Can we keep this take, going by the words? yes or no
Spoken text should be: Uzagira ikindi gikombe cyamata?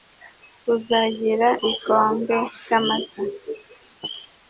no